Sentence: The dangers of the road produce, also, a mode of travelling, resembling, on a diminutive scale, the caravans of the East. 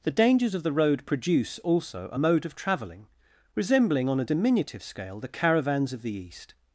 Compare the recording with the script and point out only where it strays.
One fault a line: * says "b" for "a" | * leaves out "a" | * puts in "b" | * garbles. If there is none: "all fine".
all fine